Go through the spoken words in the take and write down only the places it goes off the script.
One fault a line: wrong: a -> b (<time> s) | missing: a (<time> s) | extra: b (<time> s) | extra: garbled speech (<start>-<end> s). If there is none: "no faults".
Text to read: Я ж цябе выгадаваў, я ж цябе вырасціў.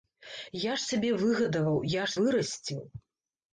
missing: цябе (2.2 s)